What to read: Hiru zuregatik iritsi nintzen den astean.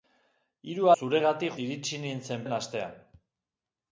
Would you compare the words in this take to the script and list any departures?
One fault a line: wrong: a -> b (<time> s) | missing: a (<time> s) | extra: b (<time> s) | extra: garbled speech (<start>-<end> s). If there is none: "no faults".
no faults